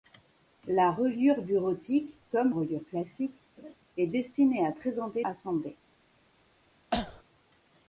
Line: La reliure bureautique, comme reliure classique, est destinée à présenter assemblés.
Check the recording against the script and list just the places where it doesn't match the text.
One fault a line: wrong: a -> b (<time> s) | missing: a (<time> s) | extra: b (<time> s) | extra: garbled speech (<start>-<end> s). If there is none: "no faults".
no faults